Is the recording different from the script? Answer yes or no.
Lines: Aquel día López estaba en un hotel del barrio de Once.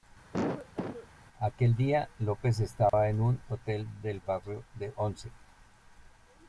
no